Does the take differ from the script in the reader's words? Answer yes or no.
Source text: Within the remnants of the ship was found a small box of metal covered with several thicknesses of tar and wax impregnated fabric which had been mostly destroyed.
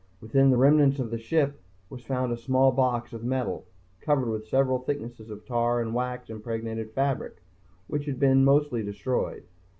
no